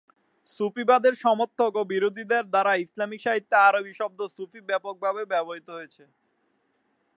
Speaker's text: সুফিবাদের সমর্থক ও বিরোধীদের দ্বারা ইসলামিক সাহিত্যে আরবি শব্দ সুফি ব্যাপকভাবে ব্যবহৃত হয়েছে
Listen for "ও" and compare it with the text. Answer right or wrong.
right